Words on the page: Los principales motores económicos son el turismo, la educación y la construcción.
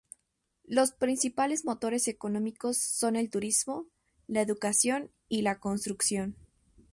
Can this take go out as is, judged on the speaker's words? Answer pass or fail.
pass